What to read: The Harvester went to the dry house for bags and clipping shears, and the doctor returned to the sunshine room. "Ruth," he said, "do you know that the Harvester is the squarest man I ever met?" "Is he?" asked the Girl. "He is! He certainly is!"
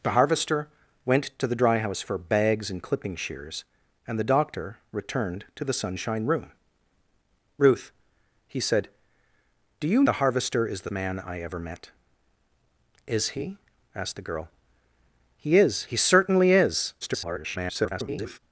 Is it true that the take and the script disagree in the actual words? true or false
true